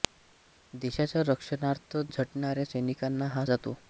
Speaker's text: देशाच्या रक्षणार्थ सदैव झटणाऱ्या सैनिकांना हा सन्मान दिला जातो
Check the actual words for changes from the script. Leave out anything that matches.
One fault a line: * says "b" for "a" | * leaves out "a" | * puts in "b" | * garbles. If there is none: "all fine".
* leaves out "सदैव"
* leaves out "सन्मान दिला"